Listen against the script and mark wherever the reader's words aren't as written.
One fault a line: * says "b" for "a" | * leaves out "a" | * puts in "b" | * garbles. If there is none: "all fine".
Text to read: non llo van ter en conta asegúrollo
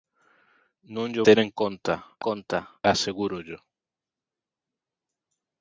* leaves out "van"
* puts in "conta"